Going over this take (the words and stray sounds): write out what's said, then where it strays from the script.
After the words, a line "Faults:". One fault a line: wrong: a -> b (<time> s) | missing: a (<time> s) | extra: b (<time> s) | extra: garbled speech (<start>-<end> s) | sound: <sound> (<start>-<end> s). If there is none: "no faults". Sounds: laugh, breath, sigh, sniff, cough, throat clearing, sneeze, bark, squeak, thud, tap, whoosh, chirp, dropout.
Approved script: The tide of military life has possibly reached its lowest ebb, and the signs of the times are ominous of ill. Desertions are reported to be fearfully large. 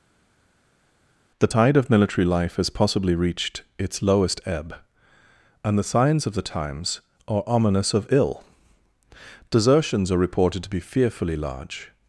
The tide of military life has possibly reached its lowest ebb, and the signs of the times are ominous of ill. Desertions are reported to be fearfully large.
Faults:
no faults